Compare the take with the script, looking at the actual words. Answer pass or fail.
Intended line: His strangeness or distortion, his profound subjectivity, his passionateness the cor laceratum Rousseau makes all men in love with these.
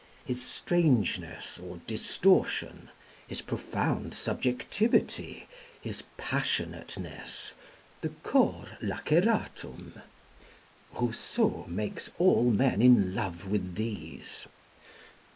pass